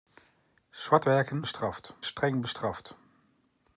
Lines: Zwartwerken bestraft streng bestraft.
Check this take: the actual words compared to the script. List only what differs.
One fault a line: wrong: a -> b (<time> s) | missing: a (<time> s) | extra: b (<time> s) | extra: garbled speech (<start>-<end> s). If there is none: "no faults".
no faults